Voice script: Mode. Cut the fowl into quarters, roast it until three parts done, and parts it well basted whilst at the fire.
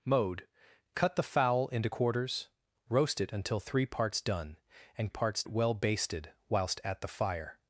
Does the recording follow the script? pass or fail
pass